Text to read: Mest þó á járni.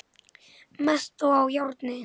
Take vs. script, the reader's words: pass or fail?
pass